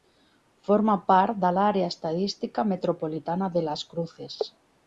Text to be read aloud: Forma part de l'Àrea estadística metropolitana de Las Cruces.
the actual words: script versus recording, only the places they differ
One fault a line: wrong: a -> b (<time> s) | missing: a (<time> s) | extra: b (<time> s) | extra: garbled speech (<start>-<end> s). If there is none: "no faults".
no faults